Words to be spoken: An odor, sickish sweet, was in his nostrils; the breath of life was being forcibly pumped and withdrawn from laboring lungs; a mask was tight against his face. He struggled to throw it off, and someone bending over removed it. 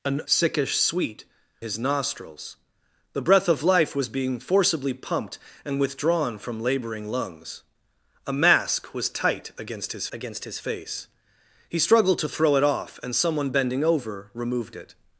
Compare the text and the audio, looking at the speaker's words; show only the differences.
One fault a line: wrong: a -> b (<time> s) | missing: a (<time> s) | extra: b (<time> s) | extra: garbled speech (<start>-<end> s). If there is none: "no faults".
missing: odor (0.2 s)
missing: was in (1.2 s)
extra: against his (10.1 s)